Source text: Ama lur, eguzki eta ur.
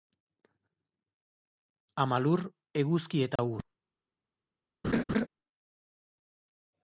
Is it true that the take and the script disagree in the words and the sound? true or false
true